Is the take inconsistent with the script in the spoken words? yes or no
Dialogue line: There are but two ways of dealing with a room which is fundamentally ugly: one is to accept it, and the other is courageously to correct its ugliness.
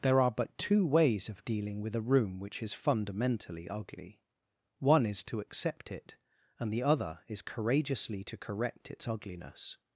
no